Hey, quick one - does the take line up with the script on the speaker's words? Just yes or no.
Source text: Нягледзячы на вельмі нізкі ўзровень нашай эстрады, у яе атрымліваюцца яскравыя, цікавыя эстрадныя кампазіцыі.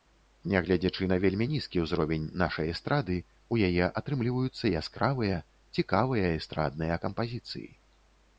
yes